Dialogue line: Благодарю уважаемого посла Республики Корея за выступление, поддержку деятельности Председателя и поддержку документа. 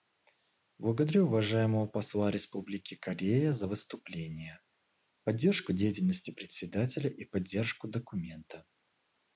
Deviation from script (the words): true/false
false